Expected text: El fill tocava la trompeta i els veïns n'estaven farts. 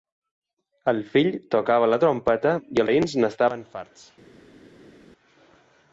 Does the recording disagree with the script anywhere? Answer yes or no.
yes